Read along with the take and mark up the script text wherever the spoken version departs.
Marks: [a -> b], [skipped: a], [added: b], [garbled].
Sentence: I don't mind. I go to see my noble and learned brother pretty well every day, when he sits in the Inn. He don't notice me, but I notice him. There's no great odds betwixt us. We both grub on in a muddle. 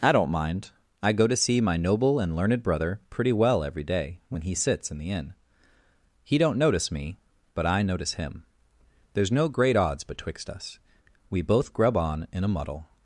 I don't mind. I go to see my noble and learned brother pretty well every day, when he sits in the Inn. He don't notice me, but I notice him. There's no great odds betwixt us. We both grub on in a muddle.